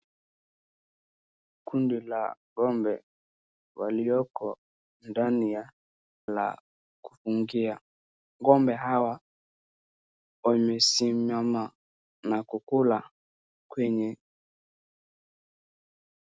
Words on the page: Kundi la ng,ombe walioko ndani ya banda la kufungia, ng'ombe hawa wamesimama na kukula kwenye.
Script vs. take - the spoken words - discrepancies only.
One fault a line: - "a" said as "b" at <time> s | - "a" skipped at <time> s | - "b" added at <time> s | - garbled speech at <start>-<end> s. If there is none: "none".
- "banda" skipped at 5.6 s